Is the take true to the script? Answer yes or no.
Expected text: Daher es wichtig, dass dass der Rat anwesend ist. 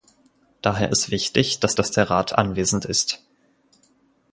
yes